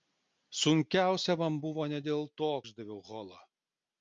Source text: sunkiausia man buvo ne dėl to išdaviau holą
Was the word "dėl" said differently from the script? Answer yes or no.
no